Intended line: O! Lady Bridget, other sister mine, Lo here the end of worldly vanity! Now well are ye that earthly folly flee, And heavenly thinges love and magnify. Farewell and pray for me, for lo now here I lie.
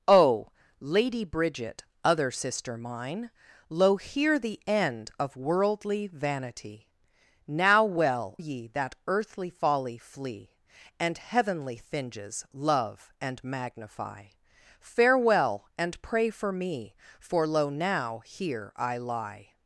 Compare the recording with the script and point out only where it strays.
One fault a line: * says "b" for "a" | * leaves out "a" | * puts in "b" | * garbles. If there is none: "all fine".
* leaves out "are"